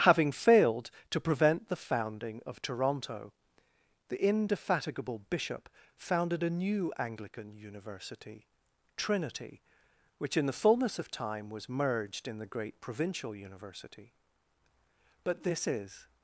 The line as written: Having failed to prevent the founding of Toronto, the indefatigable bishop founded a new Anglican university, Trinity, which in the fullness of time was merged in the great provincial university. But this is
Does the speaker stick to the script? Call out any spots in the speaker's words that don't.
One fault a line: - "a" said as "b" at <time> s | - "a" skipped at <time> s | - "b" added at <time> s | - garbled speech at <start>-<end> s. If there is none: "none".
none